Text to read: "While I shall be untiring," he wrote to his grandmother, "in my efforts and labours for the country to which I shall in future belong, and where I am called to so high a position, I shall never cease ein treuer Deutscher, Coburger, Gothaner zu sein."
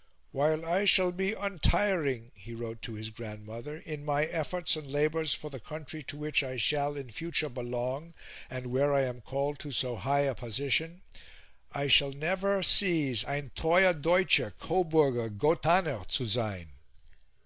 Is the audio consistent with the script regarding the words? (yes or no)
yes